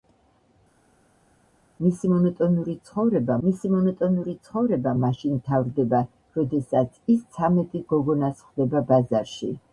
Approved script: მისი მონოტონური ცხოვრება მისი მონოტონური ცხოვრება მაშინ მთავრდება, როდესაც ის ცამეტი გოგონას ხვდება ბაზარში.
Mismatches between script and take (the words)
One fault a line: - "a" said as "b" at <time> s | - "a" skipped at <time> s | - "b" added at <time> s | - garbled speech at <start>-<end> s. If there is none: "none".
none